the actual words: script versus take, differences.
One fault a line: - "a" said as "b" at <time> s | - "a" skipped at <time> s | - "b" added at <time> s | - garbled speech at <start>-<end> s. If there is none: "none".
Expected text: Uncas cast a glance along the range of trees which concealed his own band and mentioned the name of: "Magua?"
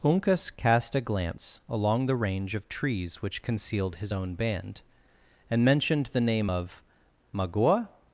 none